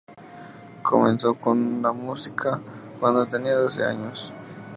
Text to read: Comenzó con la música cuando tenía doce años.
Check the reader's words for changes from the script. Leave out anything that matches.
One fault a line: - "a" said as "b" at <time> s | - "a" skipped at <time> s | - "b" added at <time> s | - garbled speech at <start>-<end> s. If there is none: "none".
none